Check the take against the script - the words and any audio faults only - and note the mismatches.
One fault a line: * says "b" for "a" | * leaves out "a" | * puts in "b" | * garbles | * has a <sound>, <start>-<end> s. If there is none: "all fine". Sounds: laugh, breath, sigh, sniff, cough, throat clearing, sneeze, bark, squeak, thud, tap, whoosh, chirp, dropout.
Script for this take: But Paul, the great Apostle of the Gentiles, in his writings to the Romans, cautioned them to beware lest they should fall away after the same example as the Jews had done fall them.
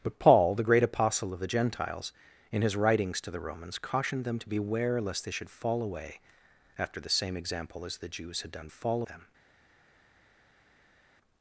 all fine